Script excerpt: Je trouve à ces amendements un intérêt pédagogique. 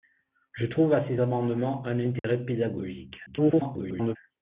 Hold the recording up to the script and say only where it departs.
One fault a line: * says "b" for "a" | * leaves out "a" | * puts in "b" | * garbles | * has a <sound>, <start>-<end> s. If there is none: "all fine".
* has a dropout, 2.2-2.2 s
* garbles